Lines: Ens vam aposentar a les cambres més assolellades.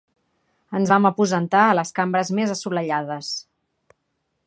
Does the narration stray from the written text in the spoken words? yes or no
no